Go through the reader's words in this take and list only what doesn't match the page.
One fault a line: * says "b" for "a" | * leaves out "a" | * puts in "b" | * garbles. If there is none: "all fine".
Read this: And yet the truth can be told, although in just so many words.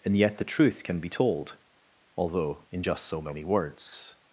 all fine